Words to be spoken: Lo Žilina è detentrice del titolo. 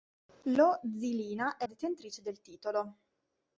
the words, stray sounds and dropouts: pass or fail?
pass